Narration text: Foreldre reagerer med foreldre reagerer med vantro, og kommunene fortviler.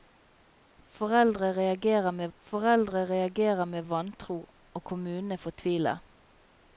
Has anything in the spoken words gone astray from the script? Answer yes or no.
no